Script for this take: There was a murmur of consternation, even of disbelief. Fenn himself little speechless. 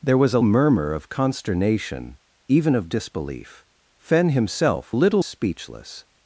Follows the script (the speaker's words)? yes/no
yes